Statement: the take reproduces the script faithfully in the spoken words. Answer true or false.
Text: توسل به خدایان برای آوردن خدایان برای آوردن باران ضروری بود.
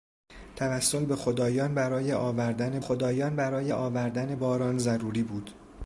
true